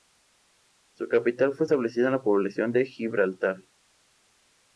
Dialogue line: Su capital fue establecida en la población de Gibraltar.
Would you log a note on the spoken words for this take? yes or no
no